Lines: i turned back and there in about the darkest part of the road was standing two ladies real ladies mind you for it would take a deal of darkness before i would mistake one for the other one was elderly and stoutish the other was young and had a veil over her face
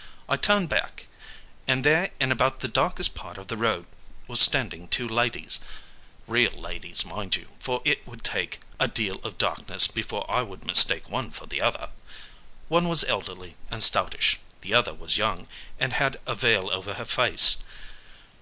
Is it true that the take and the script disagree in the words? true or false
false